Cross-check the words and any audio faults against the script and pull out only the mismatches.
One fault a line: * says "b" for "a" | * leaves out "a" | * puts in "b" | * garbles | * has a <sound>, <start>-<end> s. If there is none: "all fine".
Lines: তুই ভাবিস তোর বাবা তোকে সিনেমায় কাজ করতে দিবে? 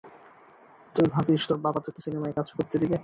all fine